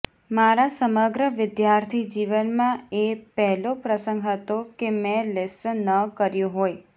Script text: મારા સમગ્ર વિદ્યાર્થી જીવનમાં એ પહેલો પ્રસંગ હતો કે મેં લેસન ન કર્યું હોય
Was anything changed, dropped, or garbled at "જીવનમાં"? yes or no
no